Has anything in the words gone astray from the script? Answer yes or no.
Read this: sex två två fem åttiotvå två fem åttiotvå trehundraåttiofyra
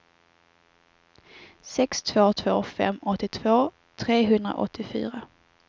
yes